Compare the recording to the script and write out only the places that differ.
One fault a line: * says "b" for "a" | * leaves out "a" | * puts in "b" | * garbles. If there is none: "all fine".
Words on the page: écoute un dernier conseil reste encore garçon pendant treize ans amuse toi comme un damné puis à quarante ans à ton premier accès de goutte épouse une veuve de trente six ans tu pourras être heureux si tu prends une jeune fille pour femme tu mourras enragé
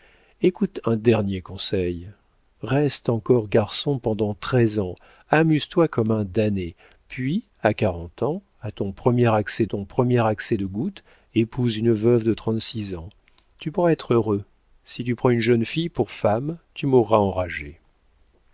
* puts in "ton premier accès"